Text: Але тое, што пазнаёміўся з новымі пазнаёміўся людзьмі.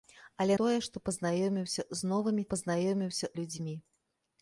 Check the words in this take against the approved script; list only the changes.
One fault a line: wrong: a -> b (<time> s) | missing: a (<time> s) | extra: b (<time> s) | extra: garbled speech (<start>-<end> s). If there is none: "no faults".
no faults